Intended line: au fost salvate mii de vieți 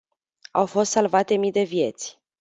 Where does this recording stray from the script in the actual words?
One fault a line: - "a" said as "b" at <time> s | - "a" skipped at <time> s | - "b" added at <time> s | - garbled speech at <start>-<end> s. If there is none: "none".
none